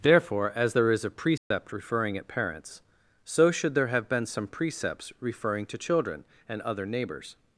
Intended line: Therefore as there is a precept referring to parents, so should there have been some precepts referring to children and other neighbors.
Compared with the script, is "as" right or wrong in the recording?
right